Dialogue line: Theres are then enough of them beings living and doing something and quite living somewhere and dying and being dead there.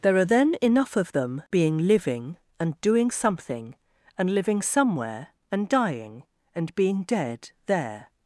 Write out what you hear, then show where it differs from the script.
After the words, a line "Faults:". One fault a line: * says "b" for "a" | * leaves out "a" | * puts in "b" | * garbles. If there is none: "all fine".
There are then enough of them being living and doing something and living somewhere and dying and being dead there.
Faults:
* says "There" for "Theres"
* says "being" for "beings"
* leaves out "quite"